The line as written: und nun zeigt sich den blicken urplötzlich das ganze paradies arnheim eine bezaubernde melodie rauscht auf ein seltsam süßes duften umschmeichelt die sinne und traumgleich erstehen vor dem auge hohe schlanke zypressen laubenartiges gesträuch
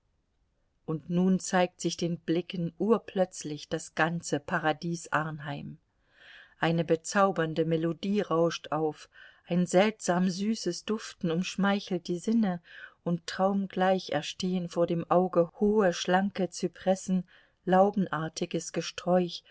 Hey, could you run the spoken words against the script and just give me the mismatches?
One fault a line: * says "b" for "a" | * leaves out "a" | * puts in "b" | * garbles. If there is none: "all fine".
all fine